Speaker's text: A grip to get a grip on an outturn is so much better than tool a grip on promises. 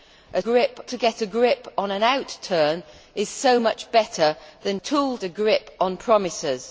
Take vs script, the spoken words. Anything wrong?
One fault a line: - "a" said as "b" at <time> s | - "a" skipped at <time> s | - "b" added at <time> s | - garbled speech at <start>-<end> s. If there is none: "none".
none